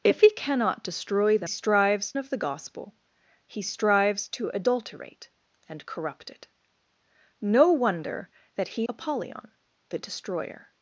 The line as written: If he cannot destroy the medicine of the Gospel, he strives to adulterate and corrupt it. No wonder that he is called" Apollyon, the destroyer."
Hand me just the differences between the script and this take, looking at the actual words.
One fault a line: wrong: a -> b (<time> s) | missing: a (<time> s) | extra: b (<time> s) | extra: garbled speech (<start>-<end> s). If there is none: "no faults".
wrong: medicine -> strives (1.4 s)
missing: is called (8.9 s)